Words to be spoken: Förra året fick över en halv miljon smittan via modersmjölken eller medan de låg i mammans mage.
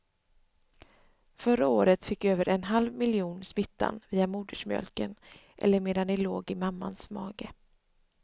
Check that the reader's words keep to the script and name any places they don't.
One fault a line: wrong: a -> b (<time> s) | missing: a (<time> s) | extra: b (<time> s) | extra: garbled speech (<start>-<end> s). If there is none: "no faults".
no faults